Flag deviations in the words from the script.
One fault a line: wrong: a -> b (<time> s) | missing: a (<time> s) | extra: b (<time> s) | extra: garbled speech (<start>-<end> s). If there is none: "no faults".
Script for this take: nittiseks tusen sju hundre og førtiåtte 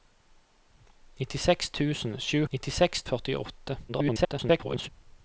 wrong: hundre -> nittiseks (2.5 s)
extra: garbled speech (3.9-4.9 s)